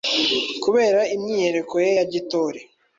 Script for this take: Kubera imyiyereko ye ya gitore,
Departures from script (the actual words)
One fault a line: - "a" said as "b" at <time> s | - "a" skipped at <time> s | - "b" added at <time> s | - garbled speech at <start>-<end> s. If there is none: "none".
none